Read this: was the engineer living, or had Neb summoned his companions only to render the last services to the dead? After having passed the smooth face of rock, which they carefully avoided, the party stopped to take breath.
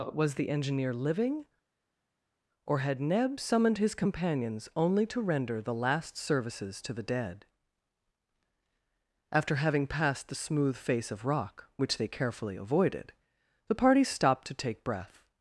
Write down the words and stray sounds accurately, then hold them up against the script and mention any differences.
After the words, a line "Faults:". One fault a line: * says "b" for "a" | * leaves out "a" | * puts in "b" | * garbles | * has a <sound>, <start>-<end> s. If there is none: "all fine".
was the engineer living, or had Neb summoned his companions only to render the last services to the dead? After having passed the smooth face of rock, which they carefully avoided, the party stopped to take breath.
Faults:
all fine